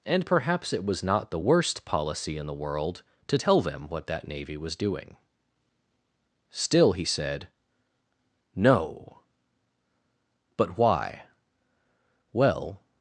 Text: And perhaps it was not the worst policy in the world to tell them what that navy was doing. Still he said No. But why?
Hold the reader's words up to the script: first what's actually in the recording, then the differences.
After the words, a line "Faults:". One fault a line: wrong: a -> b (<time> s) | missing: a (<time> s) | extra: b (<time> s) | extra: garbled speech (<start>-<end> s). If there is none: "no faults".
And perhaps it was not the worst policy in the world to tell them what that navy was doing. Still he said No. But why? Well
Faults:
extra: Well (12.3 s)